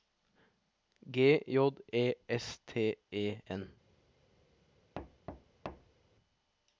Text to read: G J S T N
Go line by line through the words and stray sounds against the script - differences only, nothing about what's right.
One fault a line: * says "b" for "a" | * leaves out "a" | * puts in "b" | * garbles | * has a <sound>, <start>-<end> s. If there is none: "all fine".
* puts in "E"
* puts in "E"
* has a thud, 5.0-6.0 s